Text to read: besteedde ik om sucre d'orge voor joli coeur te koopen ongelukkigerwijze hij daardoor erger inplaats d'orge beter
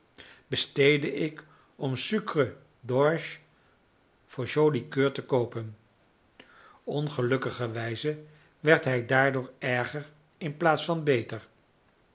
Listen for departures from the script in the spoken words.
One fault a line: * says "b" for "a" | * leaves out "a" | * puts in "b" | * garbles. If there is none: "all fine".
* puts in "werd"
* says "van" for "d'orge"